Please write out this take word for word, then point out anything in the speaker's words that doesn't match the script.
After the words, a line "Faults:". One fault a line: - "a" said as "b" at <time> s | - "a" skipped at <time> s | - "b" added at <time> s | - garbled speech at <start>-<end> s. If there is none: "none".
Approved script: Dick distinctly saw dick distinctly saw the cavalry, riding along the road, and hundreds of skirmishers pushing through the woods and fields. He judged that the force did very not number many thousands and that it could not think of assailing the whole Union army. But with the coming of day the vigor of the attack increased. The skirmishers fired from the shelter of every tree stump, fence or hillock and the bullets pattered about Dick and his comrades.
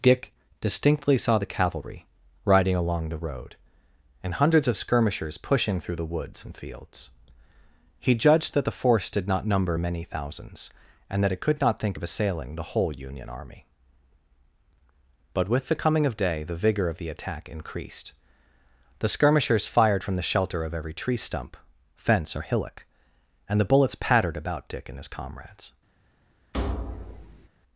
Dick distinctly saw the cavalry, riding along the road, and hundreds of skirmishers pushing through the woods and fields. He judged that the force did not number many thousands and that it could not think of assailing the whole Union army. But with the coming of day the vigor of the attack increased. The skirmishers fired from the shelter of every tree stump, fence or hillock and the bullets pattered about Dick and his comrades.
Faults:
- "dick distinctly saw" skipped at 1.4 s
- "very" skipped at 9.3 s